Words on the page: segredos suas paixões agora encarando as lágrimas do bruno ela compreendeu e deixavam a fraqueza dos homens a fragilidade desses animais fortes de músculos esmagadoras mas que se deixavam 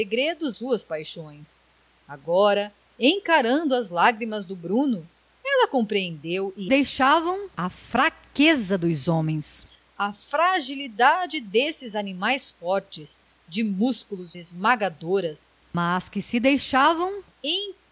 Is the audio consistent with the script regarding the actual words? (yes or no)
yes